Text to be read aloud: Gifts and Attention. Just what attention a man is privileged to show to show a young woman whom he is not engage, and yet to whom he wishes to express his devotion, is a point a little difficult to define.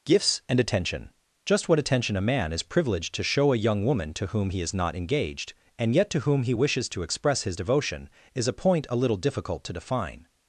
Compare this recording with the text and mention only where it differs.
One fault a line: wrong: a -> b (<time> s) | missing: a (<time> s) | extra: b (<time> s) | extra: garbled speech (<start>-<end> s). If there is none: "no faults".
missing: to show (3.5 s)
extra: to (4.2 s)
wrong: engage -> engaged (4.9 s)